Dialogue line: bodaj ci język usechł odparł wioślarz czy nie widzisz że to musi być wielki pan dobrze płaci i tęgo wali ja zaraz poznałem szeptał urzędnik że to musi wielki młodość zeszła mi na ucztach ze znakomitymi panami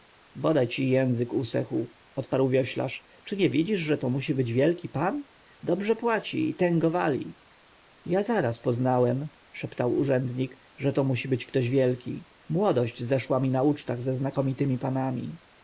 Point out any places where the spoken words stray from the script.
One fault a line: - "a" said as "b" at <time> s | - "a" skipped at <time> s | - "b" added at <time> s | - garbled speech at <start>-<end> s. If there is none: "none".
- "być ktoś" added at 11.3 s